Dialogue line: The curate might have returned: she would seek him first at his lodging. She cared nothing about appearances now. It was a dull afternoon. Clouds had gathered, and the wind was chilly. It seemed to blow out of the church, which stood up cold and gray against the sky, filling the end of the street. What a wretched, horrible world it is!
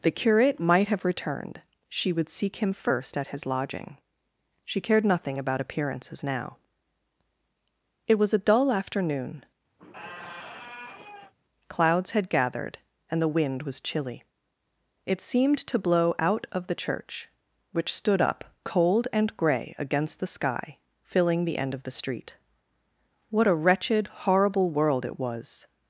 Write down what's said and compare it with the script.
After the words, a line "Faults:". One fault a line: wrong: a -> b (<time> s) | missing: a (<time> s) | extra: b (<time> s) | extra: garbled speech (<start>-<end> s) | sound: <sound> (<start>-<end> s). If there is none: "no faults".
The curate might have returned: she would seek him first at his lodging. She cared nothing about appearances now. It was a dull afternoon. Clouds had gathered, and the wind was chilly. It seemed to blow out of the church, which stood up cold and gray against the sky, filling the end of the street. What a wretched, horrible world it was!
Faults:
sound: squeak (9.8-11.3 s)
wrong: is -> was (25.2 s)